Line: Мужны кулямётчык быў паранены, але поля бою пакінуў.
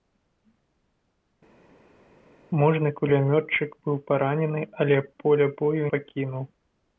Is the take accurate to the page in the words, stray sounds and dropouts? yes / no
yes